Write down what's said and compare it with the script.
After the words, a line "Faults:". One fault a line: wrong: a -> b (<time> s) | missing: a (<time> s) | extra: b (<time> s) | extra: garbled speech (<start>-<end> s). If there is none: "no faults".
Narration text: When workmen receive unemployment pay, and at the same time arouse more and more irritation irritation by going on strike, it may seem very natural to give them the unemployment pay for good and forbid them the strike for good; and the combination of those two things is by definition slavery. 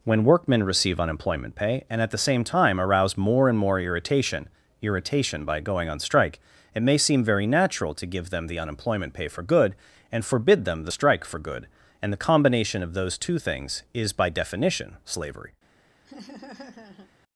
When workmen receive unemployment pay, and at the same time arouse more and more irritation irritation by going on strike, it may seem very natural to give them the unemployment pay for good and forbid them the strike for good; and the combination of those two things is by definition slavery.
Faults:
no faults